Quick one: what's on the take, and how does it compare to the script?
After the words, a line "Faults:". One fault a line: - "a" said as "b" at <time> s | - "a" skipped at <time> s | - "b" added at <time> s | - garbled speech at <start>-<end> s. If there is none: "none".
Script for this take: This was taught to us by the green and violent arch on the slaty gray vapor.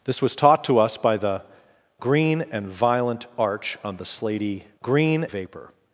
This was taught to us by the green and violent arch on the slaty green vapor.
Faults:
- "gray" said as "green" at 4.8 s